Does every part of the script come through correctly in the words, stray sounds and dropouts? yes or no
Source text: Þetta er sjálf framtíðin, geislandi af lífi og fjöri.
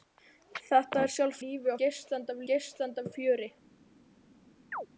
no